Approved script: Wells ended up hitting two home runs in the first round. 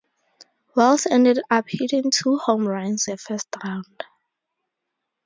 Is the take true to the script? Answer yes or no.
no